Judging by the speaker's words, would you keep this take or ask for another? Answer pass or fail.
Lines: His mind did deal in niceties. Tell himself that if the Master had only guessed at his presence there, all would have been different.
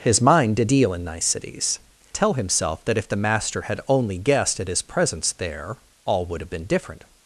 pass